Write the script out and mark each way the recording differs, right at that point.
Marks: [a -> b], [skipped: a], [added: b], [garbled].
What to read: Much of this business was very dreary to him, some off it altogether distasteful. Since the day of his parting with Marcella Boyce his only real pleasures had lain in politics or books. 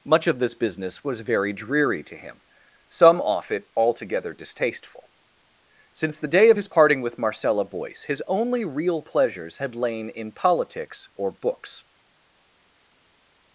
Much of this business was very dreary to him, some off it altogether distasteful. Since the day of his parting with Marcella Boyce his only real pleasures had lain in politics or books.